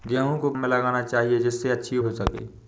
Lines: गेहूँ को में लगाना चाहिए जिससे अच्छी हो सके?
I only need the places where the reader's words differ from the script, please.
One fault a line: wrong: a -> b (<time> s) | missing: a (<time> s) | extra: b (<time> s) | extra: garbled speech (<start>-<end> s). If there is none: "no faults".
no faults